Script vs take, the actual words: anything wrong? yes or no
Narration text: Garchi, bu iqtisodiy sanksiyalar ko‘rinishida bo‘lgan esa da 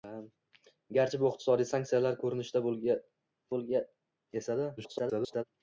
yes